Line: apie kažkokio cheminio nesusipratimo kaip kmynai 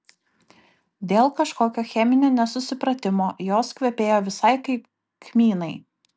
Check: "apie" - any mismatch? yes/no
yes